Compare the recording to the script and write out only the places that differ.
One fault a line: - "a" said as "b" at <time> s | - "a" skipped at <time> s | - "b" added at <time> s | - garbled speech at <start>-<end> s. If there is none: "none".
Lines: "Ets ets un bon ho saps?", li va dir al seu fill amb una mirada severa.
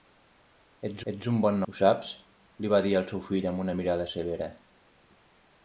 none